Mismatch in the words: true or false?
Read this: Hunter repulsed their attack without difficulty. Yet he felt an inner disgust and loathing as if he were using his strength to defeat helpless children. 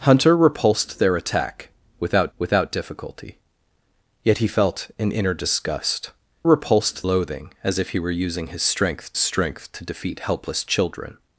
true